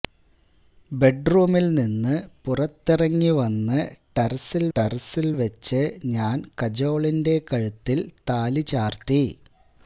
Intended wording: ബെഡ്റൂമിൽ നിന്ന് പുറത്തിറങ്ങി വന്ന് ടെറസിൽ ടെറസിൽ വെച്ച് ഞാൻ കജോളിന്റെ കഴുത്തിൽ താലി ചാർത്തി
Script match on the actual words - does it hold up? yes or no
yes